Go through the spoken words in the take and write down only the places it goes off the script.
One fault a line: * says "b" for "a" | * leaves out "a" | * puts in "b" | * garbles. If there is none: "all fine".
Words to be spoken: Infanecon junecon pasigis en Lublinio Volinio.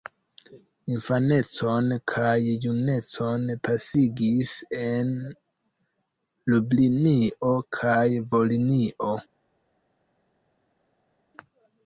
* puts in "kaj"
* puts in "kaj"